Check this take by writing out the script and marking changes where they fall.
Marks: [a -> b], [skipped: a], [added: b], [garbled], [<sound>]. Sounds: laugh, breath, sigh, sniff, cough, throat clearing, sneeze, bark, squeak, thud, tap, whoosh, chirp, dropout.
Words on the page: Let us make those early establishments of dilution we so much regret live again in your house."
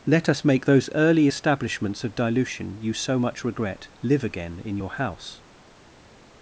Let us make those early establishments of dilution [we -> you] so much regret live again in your house."